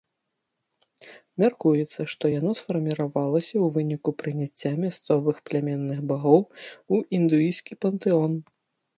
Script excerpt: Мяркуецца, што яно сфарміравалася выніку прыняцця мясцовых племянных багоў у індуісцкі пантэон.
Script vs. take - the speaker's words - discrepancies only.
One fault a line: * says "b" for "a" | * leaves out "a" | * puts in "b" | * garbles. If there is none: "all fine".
* puts in "ў"